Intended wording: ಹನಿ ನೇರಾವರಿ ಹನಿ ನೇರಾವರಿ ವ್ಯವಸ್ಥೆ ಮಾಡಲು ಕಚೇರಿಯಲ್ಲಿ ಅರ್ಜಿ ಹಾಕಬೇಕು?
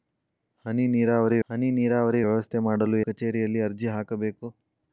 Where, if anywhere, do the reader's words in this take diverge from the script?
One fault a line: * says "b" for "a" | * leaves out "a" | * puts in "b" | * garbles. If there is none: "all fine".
all fine